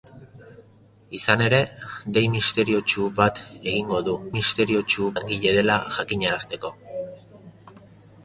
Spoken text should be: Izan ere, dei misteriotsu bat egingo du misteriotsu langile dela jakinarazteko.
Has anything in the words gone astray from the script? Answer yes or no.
no